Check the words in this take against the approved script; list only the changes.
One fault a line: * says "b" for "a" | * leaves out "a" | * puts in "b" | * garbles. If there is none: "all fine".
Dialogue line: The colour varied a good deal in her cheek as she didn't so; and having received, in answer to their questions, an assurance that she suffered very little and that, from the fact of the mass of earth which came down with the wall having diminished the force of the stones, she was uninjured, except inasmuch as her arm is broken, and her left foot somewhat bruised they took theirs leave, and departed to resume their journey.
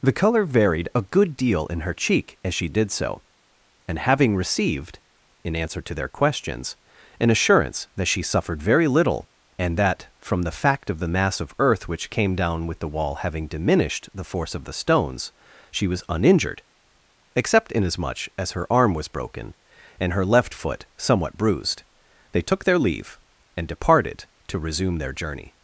* says "did" for "didn't"
* says "was" for "is"
* says "their" for "theirs"